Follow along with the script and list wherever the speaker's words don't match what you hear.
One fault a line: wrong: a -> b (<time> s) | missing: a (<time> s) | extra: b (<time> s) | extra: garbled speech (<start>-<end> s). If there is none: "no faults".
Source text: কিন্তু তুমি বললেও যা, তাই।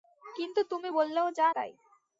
no faults